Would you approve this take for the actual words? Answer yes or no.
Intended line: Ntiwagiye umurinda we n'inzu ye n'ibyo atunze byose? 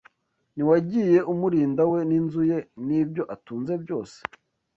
yes